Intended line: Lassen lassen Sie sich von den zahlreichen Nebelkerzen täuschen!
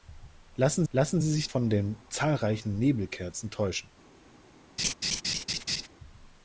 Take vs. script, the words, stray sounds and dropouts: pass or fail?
fail